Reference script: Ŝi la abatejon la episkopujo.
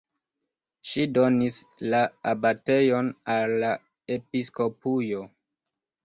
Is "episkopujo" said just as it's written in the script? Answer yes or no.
yes